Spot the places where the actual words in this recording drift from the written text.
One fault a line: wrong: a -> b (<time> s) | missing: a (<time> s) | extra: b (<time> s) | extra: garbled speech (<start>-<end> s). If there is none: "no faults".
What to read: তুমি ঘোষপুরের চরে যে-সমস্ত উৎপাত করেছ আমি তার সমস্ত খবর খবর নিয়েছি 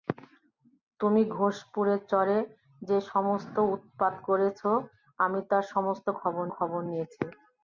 no faults